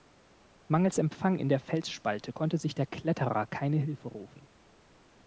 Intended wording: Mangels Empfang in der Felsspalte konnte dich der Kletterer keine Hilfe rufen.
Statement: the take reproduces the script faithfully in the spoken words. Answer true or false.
false